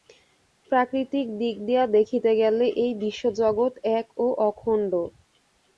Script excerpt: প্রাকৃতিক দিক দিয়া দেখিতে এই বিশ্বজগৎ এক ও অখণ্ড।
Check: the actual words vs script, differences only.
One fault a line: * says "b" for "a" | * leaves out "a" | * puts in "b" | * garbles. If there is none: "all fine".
* puts in "গেলে"